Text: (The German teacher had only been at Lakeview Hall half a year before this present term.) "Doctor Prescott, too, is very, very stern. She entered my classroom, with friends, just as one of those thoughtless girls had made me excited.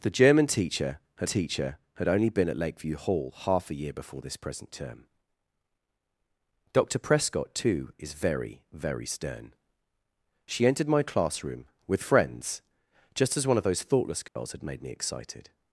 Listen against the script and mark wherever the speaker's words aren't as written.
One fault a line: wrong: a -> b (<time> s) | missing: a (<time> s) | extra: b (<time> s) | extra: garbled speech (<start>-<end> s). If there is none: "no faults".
extra: teacher had (1.2 s)